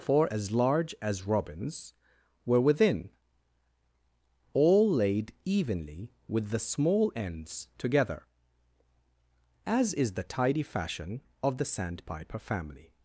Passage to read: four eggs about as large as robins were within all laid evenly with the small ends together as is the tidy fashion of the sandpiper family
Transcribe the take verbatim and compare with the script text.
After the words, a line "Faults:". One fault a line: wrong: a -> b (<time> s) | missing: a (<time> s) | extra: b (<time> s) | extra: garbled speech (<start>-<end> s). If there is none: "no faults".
four as large as robins were within all laid evenly with the small ends together as is the tidy fashion of the sandpiper family
Faults:
missing: eggs about (0.3 s)